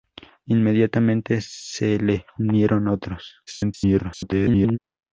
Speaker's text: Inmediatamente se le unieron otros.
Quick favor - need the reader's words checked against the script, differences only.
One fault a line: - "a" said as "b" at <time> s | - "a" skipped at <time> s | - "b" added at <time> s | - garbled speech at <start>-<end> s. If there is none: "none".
- garbled speech at 3.5-4.8 s